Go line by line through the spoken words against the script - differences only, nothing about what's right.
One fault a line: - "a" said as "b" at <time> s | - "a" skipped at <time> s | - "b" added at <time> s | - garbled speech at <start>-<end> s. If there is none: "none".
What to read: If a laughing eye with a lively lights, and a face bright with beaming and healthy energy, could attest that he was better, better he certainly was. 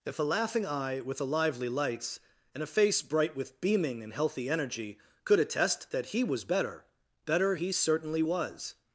none